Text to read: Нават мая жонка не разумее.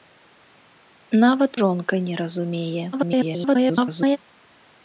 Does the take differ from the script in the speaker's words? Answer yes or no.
yes